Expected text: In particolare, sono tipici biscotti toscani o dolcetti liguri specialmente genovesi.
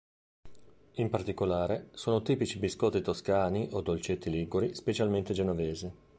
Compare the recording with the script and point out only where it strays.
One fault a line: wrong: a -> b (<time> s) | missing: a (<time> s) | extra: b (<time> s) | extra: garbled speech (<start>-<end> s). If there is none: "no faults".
no faults